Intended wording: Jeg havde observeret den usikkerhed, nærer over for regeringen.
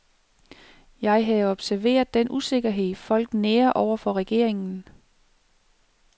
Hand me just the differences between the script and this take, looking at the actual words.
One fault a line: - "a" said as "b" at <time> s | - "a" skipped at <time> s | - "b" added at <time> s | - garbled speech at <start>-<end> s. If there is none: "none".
- "folk" added at 3.0 s